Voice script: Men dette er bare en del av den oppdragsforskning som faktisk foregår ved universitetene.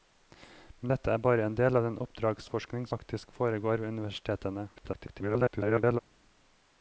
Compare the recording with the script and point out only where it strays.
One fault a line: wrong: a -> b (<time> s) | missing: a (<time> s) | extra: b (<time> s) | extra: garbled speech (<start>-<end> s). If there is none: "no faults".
missing: som (2.9 s)
extra: garbled speech (4.8-6.0 s)